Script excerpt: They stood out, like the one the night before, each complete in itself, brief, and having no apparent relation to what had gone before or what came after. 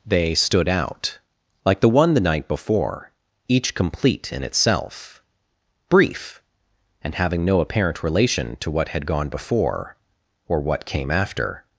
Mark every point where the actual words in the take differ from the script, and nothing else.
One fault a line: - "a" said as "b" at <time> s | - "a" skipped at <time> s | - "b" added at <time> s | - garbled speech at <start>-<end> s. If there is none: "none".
none